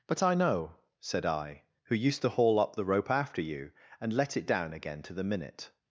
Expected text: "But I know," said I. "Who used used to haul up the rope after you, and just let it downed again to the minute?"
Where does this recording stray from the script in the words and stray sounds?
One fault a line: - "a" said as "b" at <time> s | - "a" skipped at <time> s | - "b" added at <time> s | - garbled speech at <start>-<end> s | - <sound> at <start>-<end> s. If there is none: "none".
- "used" skipped at 2.2 s
- "just" skipped at 4.1 s
- "downed" said as "down" at 4.5 s